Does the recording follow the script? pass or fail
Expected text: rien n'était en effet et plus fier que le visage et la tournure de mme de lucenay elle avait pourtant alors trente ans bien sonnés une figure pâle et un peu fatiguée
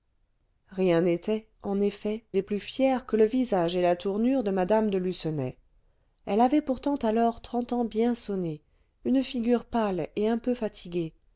pass